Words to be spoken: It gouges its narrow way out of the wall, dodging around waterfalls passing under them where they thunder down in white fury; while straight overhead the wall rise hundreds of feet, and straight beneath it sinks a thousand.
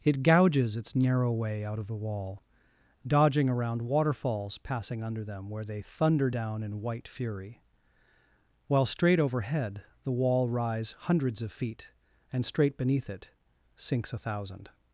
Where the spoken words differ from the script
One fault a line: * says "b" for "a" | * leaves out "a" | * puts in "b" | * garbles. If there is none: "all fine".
all fine